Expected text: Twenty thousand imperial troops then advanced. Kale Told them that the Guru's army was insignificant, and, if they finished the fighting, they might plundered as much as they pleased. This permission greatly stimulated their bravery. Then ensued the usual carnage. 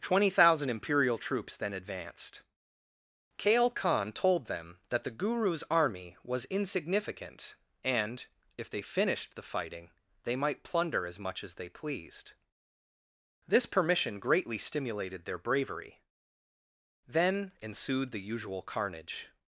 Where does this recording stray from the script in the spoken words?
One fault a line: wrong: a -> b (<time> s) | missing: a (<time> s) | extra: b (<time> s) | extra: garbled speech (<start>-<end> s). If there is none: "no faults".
extra: Khan (3.7 s)
wrong: plundered -> plunder (10.6 s)